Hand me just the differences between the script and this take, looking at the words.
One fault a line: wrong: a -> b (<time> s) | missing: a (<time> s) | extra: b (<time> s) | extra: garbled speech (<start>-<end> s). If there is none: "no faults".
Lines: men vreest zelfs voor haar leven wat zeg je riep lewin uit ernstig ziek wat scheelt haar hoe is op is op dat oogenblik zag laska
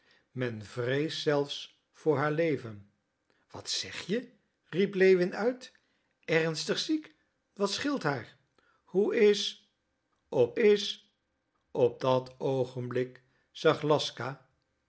no faults